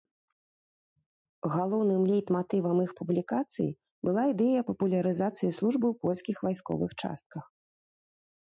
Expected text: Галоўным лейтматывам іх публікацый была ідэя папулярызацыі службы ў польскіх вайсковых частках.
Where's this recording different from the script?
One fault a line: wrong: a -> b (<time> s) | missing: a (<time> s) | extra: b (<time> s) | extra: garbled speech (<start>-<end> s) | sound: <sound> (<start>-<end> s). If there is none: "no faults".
no faults